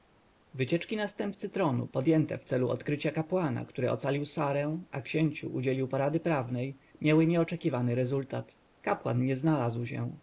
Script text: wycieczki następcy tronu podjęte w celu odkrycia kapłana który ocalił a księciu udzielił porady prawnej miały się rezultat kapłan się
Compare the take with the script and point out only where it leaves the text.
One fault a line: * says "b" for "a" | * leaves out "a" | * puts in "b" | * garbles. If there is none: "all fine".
* puts in "sarę"
* says "nieoczekiwany" for "się"
* puts in "nie znalazł"